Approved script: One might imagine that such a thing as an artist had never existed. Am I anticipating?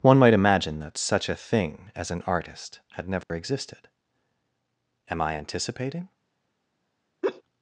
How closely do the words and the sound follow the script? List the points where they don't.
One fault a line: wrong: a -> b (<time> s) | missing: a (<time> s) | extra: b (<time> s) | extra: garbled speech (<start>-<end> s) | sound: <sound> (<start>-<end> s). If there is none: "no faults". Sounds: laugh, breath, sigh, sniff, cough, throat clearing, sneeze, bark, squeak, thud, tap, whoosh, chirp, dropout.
sound: dropout (3.2-3.3 s)
sound: laugh (7.2-7.4 s)